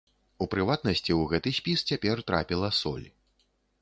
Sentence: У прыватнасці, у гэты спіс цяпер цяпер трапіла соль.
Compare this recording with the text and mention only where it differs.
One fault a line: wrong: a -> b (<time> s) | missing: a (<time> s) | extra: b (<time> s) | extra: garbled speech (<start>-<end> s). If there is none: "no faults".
missing: цяпер (2.2 s)